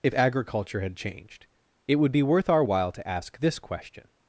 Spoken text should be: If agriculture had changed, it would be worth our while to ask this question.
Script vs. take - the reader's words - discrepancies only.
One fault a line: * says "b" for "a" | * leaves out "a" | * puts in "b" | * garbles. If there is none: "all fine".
all fine